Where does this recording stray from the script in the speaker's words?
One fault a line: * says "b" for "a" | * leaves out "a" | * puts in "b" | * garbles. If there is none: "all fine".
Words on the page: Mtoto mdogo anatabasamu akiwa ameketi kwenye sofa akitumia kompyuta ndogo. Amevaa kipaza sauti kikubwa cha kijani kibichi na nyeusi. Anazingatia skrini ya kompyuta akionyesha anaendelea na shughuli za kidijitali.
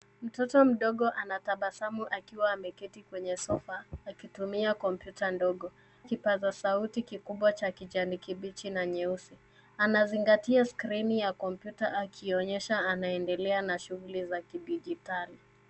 * leaves out "Amevaa"